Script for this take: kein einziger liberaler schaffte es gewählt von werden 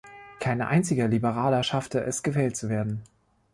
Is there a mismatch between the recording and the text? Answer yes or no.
yes